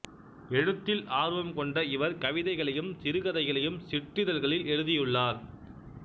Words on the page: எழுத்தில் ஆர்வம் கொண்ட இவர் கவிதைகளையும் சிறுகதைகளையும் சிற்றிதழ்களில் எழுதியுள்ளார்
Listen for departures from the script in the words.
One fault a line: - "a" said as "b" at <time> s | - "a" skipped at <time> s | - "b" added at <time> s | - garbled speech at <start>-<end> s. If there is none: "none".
none